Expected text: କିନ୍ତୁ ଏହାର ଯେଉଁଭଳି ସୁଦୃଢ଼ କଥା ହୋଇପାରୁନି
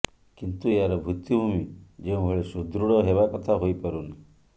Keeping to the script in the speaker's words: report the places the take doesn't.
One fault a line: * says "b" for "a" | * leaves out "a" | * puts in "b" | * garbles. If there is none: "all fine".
* puts in "ଭିତ୍ତିଭୂମି"
* puts in "ହେବା"